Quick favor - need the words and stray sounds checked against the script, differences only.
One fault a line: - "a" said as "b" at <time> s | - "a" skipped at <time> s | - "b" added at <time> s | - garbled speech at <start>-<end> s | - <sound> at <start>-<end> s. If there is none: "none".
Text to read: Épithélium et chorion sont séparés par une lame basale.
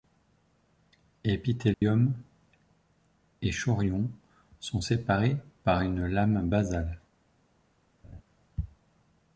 - dropout at 1.7-1.8 s
- laugh at 8.0-8.2 s